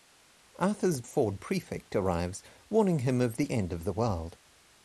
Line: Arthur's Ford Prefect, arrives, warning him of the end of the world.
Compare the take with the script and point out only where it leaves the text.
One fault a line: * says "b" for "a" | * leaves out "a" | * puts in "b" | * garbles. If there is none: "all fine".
all fine